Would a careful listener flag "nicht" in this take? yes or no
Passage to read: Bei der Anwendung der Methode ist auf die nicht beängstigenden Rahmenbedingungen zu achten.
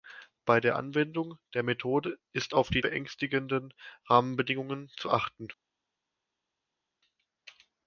yes